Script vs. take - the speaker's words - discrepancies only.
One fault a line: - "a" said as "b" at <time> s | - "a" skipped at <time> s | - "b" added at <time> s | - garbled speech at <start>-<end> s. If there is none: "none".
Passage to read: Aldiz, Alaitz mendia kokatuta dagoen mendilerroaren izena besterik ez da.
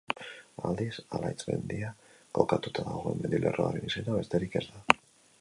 none